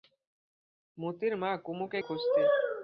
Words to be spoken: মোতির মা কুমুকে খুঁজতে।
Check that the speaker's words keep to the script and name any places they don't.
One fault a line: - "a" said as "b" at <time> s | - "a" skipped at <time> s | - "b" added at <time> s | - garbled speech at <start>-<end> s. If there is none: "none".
none